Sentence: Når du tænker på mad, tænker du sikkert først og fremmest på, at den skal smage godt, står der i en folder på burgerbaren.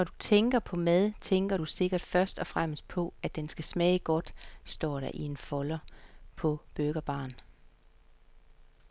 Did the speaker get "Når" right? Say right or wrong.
right